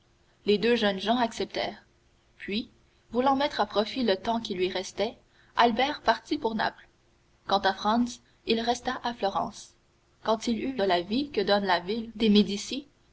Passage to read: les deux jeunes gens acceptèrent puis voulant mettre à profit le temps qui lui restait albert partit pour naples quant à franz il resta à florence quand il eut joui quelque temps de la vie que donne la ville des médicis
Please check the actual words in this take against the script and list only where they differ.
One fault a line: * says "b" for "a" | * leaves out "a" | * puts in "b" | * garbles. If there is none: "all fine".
* leaves out "joui quelque temps"